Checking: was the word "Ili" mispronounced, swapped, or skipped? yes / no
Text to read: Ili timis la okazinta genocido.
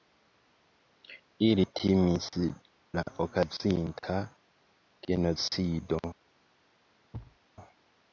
no